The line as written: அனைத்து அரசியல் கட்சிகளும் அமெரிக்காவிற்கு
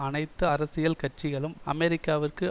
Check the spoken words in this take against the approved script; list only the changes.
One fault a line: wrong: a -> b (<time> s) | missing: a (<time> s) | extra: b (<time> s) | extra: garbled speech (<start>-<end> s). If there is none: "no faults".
no faults